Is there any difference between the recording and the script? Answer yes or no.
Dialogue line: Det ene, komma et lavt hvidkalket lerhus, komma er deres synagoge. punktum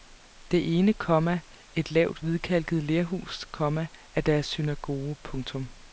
no